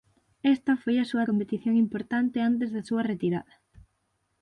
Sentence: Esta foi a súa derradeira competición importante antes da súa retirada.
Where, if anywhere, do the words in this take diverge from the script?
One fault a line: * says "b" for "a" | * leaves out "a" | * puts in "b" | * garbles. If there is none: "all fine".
* leaves out "derradeira"